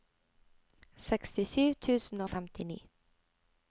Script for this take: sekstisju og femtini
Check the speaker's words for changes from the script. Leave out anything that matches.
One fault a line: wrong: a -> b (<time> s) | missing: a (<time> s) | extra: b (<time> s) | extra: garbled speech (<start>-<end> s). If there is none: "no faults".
extra: tusen (1.9 s)